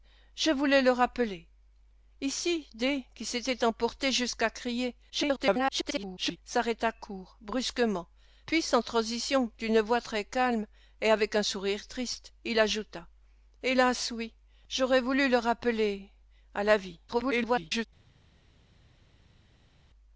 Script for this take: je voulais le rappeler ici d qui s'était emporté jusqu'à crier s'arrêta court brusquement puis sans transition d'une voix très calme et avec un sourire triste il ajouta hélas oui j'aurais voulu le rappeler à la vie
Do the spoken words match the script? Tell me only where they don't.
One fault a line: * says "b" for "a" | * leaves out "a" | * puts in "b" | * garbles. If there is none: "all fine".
* garbles
* garbles